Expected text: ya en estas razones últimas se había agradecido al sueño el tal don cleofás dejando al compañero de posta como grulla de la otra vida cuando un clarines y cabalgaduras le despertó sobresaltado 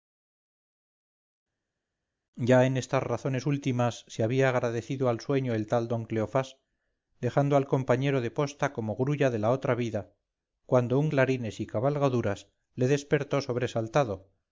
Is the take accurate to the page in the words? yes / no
yes